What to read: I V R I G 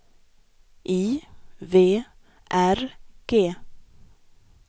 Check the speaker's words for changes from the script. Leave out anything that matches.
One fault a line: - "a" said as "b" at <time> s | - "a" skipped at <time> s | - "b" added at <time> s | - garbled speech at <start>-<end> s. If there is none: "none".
- "I" skipped at 2.8 s